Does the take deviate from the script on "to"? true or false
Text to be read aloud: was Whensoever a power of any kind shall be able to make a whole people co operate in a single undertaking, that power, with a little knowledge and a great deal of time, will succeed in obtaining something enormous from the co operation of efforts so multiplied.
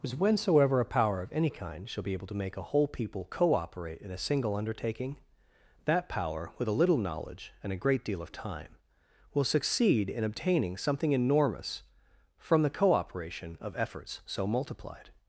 false